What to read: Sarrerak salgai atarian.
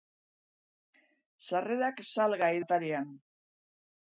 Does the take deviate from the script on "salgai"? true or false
false